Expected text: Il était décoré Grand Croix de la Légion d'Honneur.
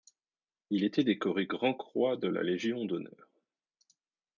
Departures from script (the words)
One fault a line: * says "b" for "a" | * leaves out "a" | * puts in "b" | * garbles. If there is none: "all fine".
all fine